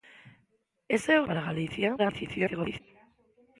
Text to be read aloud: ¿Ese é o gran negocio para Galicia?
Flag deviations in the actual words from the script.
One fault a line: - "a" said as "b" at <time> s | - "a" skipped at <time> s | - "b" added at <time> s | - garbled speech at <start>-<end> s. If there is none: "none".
- "gran negocio" skipped at 1.3 s
- garbled speech at 2.0-2.8 s